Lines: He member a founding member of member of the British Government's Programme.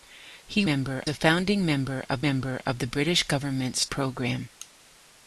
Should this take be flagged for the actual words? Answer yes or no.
no